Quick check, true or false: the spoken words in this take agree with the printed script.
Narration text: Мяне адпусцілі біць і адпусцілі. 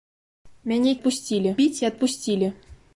true